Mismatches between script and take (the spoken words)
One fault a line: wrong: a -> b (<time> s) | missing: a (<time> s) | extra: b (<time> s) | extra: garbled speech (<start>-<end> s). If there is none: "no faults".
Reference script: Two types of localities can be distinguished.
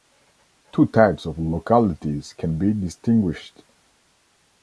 no faults